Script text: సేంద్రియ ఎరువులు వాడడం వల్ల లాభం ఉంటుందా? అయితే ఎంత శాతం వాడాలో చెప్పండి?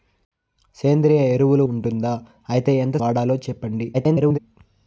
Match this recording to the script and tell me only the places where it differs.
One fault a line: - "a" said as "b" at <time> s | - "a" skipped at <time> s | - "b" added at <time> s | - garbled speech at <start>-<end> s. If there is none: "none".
- "వాడడం వల్ల లాభం" skipped at 1.6 s
- "శాతం" skipped at 3.0 s
- garbled speech at 3.9-4.4 s